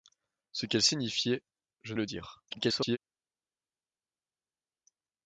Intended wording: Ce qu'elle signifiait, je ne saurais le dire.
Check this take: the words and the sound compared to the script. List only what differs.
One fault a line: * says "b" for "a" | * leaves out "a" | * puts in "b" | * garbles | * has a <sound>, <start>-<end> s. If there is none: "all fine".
* leaves out "ne saurais"
* garbles